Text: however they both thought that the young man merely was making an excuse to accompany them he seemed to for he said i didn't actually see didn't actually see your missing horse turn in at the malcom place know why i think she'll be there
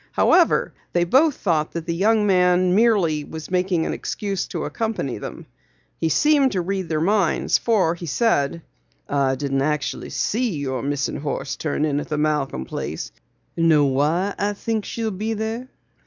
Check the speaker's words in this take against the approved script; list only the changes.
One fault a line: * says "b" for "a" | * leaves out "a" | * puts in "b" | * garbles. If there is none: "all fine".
* puts in "read their minds"
* leaves out "didn't actually see"